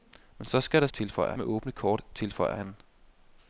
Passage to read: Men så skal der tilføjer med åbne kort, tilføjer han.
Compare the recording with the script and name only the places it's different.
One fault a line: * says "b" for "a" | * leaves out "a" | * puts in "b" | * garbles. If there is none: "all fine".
all fine